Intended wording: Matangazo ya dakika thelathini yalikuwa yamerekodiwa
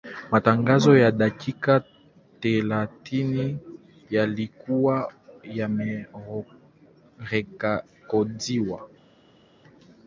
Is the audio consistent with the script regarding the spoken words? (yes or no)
yes